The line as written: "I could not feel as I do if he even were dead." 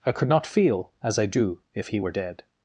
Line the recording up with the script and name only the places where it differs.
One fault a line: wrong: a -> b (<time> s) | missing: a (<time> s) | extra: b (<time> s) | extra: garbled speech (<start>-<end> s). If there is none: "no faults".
missing: even (2.0 s)